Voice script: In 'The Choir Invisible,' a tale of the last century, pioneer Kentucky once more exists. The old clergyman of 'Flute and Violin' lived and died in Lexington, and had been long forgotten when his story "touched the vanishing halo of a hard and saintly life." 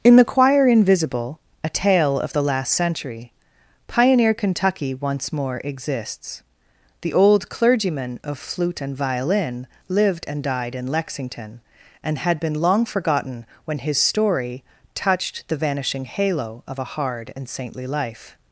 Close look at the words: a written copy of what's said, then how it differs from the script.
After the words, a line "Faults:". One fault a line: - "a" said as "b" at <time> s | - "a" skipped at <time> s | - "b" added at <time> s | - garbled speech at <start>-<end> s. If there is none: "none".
In 'The Choir Invisible,' a tale of the last century, pioneer Kentucky once more exists. The old clergyman of 'Flute and Violin' lived and died in Lexington, and had been long forgotten when his story "touched the vanishing halo of a hard and saintly life."
Faults:
none